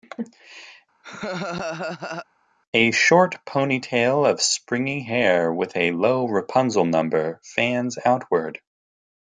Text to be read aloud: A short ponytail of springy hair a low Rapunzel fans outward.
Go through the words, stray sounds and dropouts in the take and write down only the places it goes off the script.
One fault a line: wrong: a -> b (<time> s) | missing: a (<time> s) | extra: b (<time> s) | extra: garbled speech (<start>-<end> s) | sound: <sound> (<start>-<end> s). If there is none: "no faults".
sound: laugh (1.0-2.3 s)
extra: with (5.5 s)
extra: number (6.9 s)